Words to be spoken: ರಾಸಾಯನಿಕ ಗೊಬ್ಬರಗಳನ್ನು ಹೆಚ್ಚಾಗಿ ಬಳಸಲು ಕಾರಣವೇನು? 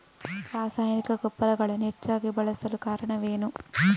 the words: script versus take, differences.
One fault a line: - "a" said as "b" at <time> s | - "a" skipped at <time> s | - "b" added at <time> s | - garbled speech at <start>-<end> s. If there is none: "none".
none